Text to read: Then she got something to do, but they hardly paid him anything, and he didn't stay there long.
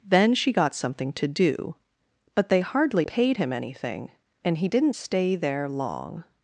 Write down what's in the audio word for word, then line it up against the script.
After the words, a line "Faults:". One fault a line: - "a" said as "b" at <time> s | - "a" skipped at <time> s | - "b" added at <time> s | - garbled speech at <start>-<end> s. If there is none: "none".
Then she got something to do, but they hardly paid him anything, and he didn't stay there long.
Faults:
none